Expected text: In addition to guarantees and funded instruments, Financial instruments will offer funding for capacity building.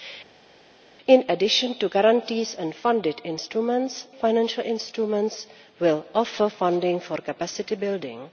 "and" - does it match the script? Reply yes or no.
yes